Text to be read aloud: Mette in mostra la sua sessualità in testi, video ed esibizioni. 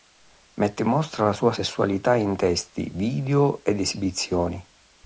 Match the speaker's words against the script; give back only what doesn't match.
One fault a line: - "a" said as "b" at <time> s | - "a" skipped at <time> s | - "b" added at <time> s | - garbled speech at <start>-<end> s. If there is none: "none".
none